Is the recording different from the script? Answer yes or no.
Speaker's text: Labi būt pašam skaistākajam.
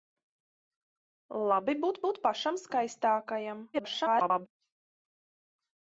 yes